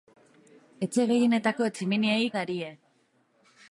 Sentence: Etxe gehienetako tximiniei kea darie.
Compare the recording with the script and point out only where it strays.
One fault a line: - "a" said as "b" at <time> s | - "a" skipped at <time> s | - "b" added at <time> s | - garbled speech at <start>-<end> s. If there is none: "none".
- "kea" skipped at 2.3 s